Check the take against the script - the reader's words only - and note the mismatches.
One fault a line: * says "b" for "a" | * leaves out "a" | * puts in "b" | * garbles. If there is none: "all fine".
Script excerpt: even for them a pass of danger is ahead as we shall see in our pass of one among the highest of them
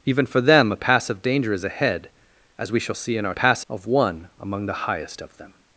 all fine